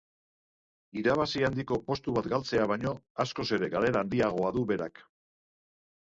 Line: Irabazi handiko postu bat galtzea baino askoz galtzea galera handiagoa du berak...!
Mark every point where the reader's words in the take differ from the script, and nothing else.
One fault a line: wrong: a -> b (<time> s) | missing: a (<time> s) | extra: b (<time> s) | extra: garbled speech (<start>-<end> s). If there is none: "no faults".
wrong: galtzea -> ere (3.6 s)